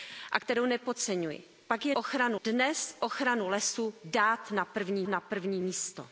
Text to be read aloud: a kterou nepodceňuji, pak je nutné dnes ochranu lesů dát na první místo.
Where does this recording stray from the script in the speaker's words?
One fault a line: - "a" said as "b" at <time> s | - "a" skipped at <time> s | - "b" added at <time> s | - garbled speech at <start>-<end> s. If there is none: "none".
- "nutné" said as "ochranu" at 1.9 s
- "na první" added at 5.1 s